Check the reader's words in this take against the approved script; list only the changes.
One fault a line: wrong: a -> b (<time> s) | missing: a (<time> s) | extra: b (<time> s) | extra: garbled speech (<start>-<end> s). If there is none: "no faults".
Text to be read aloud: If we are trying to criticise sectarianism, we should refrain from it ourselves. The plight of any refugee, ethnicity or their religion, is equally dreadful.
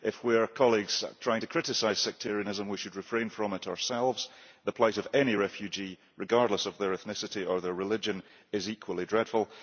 extra: regardless of their (6.2 s)